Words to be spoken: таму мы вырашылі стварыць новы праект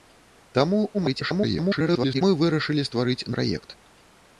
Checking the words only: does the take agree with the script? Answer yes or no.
no